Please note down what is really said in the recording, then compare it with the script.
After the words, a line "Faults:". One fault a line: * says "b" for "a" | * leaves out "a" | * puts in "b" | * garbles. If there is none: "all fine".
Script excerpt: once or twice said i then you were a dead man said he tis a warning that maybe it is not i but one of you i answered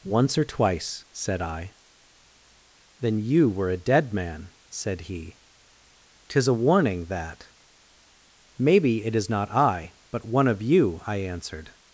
once or twice said i then you were a dead man said he tis a warning that maybe it is not i but one of you i answered
Faults:
all fine